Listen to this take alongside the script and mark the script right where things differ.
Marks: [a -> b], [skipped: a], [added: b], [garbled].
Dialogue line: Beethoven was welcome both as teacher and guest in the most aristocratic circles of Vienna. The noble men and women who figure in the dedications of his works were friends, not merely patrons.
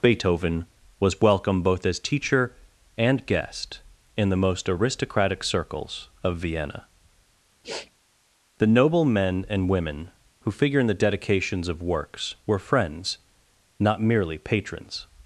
Beethoven was welcome both as teacher and guest in the most aristocratic circles of Vienna. The noble men and women who figure in the dedications of [skipped: his] works were friends, not merely patrons.